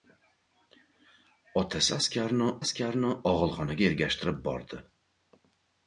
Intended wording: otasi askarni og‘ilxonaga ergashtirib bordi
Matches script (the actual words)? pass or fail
fail